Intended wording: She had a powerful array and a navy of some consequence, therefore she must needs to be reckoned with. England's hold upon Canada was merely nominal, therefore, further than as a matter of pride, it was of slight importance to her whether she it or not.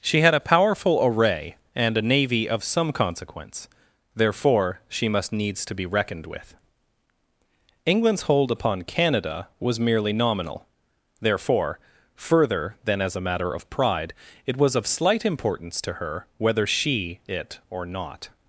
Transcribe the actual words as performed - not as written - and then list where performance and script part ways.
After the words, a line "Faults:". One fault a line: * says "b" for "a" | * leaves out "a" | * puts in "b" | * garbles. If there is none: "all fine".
She had a powerful array and a navy of some consequence, therefore she must needs to be reckoned with. England's hold upon Canada was merely nominal, therefore, further than as a matter of pride, it was of slight importance to her whether she it or not.
Faults:
all fine